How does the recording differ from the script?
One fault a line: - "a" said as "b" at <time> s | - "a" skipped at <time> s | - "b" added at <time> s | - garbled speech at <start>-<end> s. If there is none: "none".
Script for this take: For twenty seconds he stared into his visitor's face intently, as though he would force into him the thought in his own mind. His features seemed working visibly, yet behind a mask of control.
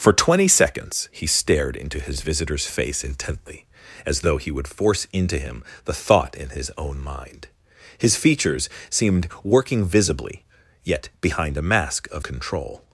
none